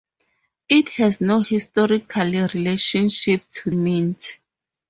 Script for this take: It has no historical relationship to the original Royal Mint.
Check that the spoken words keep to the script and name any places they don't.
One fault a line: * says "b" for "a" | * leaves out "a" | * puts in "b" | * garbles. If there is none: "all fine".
* leaves out "the original Royal"